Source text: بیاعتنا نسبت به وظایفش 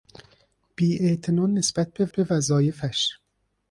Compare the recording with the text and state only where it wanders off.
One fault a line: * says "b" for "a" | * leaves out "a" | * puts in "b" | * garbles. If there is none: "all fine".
* puts in "به"